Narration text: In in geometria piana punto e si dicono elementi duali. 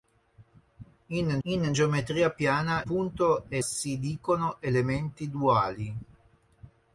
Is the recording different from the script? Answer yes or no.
no